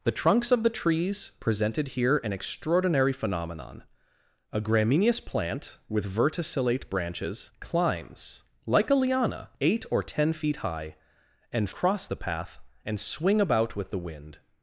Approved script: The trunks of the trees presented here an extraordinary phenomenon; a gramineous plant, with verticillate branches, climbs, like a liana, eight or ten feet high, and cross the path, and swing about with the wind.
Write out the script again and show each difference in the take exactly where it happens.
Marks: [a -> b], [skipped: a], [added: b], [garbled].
The trunks of the trees presented here an extraordinary phenomenon; a gramineous plant, with verticillate branches, climbs, like a liana, eight or ten feet high, and cross the path, and swing about with the wind.